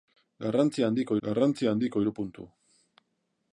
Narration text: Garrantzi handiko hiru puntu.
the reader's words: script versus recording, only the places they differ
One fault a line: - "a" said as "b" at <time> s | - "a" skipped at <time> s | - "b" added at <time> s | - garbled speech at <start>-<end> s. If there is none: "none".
- "garrantzi handiko" added at 1.3 s